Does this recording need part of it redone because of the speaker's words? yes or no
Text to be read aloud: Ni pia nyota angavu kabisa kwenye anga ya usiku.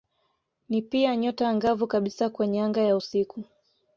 no